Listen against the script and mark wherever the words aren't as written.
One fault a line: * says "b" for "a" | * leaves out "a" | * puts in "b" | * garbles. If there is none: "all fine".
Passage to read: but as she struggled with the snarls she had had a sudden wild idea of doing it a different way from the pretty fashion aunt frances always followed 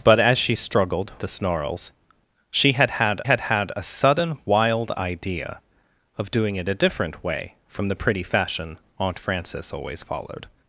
* leaves out "with"
* puts in "had had"